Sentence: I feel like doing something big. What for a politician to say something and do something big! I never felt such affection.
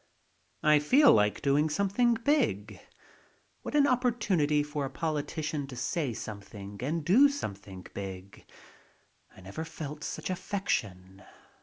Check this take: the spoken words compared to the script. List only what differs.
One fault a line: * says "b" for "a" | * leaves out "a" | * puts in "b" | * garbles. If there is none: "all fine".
* puts in "an opportunity"